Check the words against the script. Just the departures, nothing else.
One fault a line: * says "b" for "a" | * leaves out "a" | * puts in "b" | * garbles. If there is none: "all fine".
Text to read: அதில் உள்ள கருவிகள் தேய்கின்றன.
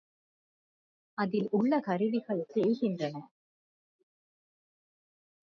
all fine